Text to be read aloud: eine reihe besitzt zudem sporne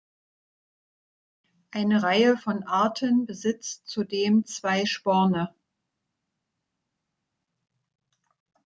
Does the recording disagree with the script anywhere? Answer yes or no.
yes